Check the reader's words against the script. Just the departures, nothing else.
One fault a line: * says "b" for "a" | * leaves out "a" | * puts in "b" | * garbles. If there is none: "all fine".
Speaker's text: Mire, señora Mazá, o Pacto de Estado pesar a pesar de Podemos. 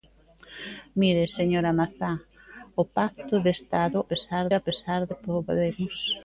all fine